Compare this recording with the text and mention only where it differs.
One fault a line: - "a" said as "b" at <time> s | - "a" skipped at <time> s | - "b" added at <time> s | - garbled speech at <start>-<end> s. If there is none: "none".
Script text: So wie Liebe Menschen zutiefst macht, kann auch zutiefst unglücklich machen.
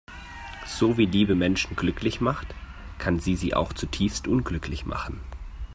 - "zutiefst" said as "glücklich" at 1.8 s
- "sie sie" added at 3.2 s